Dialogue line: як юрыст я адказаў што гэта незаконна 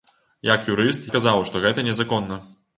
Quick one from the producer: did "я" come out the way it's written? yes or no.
no